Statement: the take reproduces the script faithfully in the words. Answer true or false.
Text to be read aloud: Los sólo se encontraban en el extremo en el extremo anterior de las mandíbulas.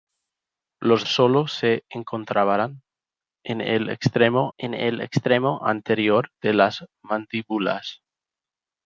true